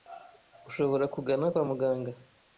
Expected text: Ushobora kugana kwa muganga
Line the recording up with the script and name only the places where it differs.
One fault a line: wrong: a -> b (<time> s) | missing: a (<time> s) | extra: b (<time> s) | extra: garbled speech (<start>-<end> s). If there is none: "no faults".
no faults